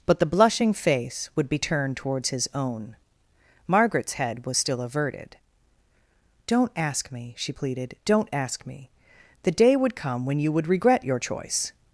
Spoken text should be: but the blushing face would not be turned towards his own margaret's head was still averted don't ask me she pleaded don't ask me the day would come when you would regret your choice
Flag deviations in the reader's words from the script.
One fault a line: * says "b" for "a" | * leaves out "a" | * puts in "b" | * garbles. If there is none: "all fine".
* leaves out "not"